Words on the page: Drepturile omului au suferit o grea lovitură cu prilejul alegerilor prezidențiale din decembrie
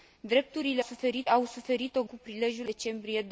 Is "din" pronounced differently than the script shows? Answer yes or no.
yes